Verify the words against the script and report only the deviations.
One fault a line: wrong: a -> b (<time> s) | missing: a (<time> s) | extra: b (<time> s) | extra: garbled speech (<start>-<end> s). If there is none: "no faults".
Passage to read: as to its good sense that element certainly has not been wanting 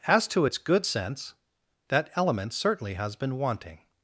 missing: not (3.1 s)